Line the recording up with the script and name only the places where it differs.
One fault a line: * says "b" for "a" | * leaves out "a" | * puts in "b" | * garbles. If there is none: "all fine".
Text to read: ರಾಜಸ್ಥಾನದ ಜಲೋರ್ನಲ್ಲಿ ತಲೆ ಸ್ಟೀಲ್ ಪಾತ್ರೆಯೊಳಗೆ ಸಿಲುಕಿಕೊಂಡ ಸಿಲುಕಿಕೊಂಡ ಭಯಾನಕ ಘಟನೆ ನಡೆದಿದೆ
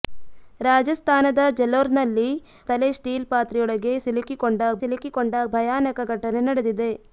all fine